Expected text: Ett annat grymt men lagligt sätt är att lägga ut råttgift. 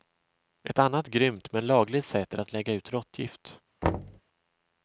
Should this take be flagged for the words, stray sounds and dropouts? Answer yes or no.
yes